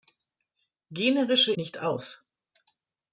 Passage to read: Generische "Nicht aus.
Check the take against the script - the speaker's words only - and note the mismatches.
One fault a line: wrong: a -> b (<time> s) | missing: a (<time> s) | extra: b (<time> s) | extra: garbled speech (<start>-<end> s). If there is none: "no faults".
no faults